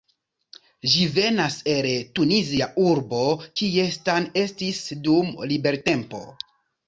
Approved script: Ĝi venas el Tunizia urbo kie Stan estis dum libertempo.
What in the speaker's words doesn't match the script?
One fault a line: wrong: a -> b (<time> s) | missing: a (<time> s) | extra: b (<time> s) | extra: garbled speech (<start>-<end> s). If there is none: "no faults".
no faults